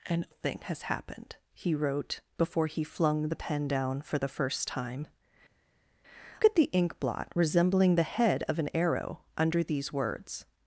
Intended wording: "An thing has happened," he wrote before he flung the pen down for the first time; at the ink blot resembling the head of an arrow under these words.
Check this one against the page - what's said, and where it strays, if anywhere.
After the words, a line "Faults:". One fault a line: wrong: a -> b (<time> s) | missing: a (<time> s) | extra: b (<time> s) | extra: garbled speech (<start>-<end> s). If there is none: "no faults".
"An thing has happened," he wrote before he flung the pen down for the first time; at the ink blot resembling the head of an arrow under these words.
Faults:
no faults